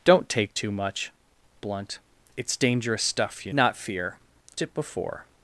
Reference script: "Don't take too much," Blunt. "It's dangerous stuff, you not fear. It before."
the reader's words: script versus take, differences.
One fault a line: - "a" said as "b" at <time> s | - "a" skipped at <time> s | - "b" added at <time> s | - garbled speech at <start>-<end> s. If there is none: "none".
none